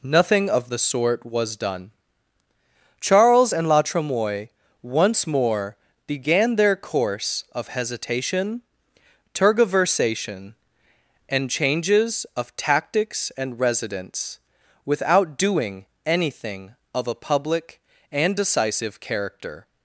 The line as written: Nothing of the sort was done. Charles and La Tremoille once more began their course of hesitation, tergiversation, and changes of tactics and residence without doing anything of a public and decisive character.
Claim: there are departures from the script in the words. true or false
false